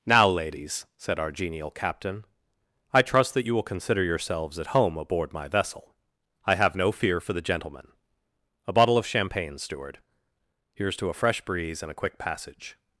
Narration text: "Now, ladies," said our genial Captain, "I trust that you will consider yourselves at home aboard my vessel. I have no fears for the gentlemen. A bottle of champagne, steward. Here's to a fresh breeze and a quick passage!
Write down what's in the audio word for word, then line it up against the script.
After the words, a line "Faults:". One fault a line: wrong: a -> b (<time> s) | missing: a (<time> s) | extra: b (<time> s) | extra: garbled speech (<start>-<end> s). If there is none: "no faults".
"Now, ladies," said our genial Captain, "I trust that you will consider yourselves at home aboard my vessel. I have no fear for the gentlemen. A bottle of champagne, steward. Here's to a fresh breeze and a quick passage!
Faults:
wrong: fears -> fear (6.9 s)